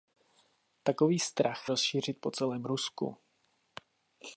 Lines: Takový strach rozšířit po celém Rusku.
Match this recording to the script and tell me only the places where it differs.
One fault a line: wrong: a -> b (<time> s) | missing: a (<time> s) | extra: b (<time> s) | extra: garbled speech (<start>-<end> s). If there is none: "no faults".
no faults